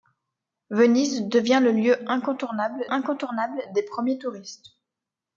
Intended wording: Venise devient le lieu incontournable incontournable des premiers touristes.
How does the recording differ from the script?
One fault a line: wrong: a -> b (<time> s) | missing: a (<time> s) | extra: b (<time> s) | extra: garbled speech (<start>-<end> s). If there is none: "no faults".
no faults